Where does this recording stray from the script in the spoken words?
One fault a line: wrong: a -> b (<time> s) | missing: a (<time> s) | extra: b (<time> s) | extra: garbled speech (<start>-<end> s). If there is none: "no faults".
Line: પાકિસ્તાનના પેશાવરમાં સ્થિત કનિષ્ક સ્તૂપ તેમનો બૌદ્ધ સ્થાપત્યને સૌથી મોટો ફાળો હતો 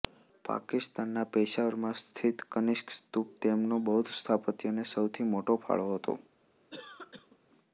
no faults